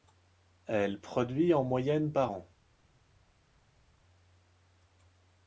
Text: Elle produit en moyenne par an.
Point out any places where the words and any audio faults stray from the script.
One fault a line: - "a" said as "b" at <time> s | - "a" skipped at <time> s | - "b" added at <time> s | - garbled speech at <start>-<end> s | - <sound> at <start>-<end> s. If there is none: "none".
none